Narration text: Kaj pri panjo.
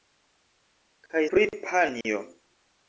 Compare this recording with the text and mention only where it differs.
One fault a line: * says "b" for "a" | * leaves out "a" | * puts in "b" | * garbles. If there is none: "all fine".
all fine